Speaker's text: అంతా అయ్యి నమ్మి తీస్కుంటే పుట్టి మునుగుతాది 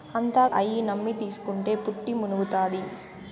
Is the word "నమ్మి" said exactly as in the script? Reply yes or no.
yes